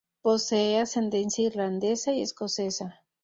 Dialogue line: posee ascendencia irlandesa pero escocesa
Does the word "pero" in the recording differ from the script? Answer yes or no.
yes